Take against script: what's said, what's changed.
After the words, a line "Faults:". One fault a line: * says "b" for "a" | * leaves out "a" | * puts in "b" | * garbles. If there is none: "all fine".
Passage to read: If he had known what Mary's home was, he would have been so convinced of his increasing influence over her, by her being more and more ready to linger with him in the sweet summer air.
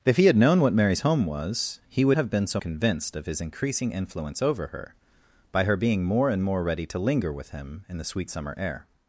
If he had known what Mary's home was, he would have been so convinced of his increasing influence over her, by her being more and more ready to linger with him in the sweet summer air.
Faults:
all fine